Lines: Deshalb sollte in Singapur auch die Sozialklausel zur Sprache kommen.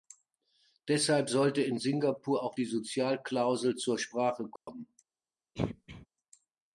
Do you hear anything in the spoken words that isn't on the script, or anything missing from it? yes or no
no